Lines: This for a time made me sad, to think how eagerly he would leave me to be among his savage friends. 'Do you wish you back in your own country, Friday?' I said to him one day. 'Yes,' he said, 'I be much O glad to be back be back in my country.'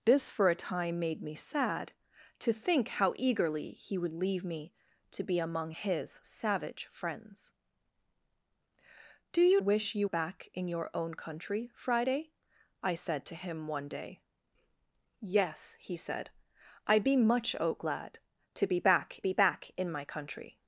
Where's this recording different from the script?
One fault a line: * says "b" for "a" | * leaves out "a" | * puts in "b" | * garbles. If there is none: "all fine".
all fine